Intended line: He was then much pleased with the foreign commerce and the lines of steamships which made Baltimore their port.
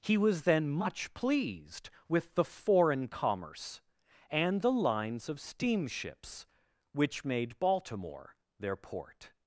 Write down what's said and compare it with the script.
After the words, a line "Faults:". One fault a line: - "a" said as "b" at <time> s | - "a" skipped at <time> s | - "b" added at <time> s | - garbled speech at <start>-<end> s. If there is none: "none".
He was then much pleased with the foreign commerce and the lines of steamships which made Baltimore their port.
Faults:
none